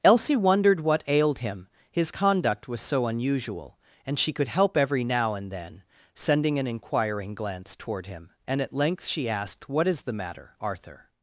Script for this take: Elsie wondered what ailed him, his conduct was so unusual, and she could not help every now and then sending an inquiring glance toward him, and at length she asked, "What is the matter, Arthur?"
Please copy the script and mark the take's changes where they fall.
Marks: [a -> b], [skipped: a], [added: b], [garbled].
Elsie wondered what ailed him, his conduct was so unusual, and she could [skipped: not] help every now and then sending an inquiring glance toward him, and at length she asked, "What is the matter, Arthur?"